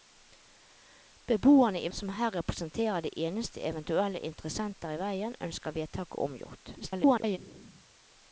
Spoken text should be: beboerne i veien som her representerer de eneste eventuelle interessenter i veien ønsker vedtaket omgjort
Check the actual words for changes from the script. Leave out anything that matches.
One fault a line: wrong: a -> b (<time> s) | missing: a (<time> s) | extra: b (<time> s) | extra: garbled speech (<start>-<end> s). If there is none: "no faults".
missing: veien (1.9 s)
extra: garbled speech (6.8-7.4 s)